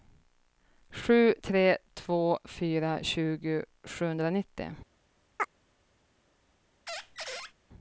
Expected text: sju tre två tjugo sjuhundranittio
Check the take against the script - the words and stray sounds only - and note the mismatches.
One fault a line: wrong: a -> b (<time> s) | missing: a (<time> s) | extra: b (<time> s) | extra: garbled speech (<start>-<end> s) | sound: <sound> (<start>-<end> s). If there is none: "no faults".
extra: fyra (2.4 s)
sound: chirp (5.4-5.5 s)
sound: squeak (6.9-7.5 s)